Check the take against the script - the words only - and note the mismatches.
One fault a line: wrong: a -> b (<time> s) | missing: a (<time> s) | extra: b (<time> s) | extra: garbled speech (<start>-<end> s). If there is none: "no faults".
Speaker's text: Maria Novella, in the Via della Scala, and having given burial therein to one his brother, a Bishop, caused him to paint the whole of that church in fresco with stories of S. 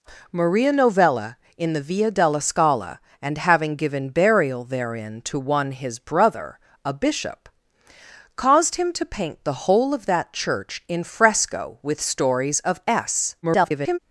extra: garbled speech (13.4-14.0 s)